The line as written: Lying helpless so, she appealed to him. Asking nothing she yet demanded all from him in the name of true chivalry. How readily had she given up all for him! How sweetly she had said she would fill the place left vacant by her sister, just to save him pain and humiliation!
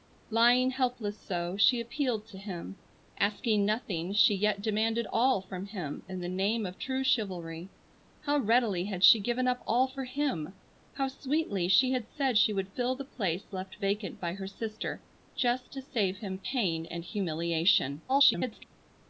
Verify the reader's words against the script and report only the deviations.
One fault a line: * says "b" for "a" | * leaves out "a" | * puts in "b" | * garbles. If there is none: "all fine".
* garbles